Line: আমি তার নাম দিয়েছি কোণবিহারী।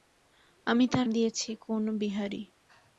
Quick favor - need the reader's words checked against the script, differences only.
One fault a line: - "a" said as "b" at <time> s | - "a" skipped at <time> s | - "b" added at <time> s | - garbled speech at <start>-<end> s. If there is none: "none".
- "নাম" skipped at 1.1 s